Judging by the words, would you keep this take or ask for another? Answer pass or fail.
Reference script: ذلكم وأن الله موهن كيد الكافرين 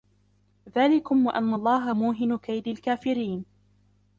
pass